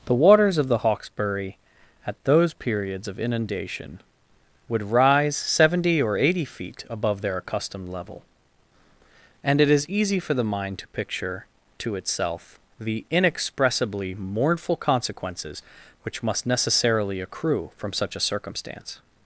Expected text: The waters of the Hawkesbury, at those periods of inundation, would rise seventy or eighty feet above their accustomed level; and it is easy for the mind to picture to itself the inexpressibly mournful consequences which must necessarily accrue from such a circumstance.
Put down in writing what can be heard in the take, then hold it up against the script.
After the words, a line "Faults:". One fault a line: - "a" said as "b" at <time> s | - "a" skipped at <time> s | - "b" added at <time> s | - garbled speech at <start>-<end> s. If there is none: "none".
The waters of the Hawkesbury, at those periods of inundation, would rise seventy or eighty feet above their accustomed level; and it is easy for the mind to picture to itself the inexpressibly mournful consequences which must necessarily accrue from such a circumstance.
Faults:
none